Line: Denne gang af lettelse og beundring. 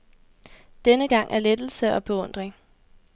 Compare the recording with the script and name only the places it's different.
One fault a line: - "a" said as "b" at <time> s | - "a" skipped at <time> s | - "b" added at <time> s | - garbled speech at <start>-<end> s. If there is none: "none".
none